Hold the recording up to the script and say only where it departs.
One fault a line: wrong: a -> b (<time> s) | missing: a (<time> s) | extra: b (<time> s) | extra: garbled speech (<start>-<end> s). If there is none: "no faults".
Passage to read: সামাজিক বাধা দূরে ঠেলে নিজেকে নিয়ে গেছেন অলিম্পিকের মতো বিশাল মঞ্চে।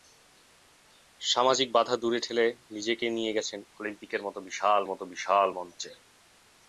extra: মতো বিশাল (4.9 s)